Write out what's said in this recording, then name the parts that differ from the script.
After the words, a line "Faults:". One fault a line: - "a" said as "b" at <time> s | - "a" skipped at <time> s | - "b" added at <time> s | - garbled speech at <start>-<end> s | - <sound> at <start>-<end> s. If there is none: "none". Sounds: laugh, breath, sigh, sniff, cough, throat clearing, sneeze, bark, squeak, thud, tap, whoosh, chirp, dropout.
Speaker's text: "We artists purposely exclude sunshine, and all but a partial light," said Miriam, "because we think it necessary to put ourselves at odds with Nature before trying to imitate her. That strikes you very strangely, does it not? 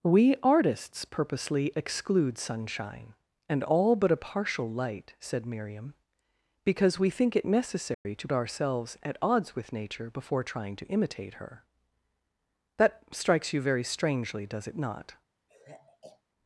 "We artists purposely exclude sunshine, and all but a partial light," said Miriam, "because we think it necessary to ourselves at odds with Nature before trying to imitate her. That strikes you very strangely, does it not?
Faults:
- dropout at 7.9-8.1 s
- "put" skipped at 8.3 s
- sigh at 15.5-16.2 s